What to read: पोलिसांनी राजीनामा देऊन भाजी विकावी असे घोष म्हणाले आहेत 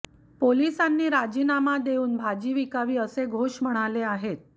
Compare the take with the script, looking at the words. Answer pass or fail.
pass